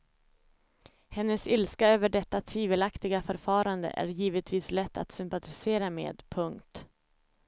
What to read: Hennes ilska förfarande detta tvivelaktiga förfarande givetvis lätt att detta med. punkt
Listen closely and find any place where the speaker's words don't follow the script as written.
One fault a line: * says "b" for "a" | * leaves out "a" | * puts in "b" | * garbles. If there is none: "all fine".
* says "över" for "förfarande"
* puts in "är"
* says "sympatisera" for "detta"